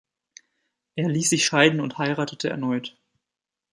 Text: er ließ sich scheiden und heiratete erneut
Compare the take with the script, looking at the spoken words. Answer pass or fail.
pass